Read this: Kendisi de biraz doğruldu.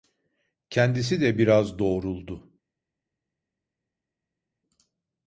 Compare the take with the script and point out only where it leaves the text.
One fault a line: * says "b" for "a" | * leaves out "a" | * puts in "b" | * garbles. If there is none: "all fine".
all fine